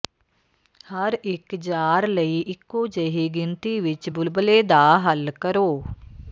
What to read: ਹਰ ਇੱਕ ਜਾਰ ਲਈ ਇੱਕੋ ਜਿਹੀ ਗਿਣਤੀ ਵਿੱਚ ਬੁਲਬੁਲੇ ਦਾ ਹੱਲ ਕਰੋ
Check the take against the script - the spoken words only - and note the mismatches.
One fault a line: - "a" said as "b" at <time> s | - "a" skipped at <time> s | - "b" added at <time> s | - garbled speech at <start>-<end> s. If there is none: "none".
none